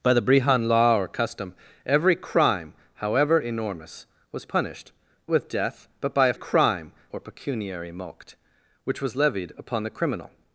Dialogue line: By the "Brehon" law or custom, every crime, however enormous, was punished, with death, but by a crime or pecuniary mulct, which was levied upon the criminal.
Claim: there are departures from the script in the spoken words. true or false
false